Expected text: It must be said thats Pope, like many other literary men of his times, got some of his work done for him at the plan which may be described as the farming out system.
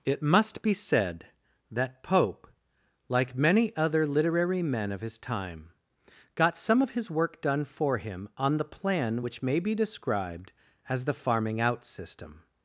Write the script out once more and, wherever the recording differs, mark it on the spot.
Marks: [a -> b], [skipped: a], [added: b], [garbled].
It must be said [thats -> that] Pope, like many other literary men of his [times, -> time] got some of his work done for him [at -> on] the plan which may be described as the farming out system.